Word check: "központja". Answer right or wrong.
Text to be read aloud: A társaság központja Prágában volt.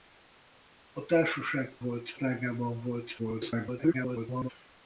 wrong